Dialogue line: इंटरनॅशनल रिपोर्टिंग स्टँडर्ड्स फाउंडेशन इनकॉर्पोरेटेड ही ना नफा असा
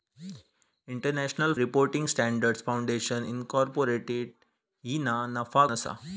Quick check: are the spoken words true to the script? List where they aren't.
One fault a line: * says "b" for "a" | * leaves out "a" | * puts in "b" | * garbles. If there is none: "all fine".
all fine